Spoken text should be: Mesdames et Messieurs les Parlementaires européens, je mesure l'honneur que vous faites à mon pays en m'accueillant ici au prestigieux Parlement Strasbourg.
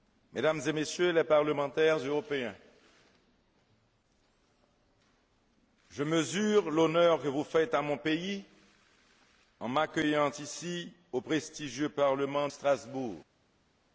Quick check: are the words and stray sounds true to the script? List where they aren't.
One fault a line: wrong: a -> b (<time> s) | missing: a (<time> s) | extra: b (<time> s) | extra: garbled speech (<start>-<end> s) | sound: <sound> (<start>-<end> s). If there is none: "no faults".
no faults